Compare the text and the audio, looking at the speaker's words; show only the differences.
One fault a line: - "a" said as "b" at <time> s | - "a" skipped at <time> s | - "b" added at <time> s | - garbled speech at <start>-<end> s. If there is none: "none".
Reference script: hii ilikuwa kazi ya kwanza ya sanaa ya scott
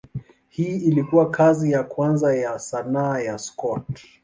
none